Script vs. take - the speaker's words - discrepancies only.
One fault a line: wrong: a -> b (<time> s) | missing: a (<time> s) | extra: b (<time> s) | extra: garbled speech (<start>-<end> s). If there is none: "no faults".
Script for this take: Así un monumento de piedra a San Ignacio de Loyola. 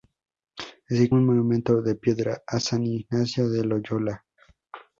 no faults